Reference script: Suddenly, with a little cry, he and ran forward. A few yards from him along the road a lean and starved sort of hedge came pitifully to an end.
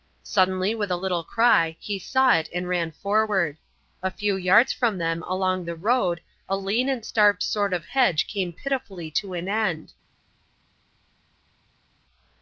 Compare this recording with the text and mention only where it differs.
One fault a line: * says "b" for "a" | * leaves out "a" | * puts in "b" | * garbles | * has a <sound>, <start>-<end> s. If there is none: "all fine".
* puts in "saw it"
* says "them" for "him"